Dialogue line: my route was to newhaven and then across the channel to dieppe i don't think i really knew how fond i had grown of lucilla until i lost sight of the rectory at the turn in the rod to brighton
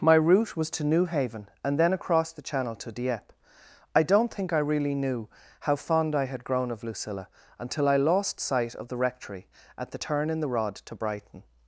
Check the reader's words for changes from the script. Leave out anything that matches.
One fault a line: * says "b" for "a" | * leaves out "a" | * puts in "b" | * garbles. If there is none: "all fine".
all fine